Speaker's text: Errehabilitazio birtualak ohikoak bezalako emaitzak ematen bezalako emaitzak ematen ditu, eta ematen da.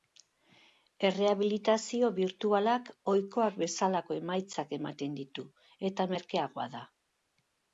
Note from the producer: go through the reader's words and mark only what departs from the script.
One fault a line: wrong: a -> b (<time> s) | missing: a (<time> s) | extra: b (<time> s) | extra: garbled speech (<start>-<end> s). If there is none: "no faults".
missing: bezalako emaitzak ematen (5.2 s)
wrong: ematen -> merkeagoa (6.1 s)